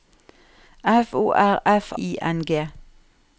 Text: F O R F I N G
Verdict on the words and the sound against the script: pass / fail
pass